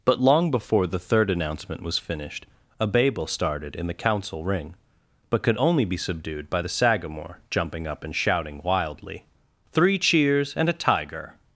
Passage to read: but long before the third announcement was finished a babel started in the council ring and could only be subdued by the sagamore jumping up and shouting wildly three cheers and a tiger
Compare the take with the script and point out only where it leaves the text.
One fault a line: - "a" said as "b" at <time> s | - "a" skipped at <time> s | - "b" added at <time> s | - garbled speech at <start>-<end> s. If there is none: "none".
- "and" said as "but" at 5.3 s